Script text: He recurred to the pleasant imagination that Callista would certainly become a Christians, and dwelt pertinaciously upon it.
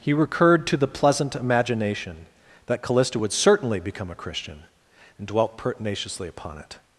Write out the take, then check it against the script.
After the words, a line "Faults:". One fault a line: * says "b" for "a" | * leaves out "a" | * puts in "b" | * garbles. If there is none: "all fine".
He recurred to the pleasant imagination that Callista would certainly become a Christian, and dwelt pertinaciously upon it.
Faults:
* says "Christian" for "Christians"